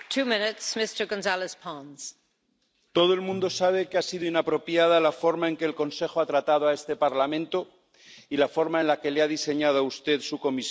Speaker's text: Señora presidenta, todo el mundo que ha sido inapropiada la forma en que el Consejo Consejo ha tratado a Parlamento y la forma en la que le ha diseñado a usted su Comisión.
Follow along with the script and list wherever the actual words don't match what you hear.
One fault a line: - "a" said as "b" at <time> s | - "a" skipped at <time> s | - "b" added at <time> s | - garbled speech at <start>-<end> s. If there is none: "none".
- "sabe" added at 3.5 s
- "Consejo" skipped at 6.2 s
- "este" added at 6.7 s